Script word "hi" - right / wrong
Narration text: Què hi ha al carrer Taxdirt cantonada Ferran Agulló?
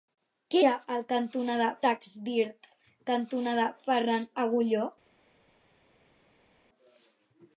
wrong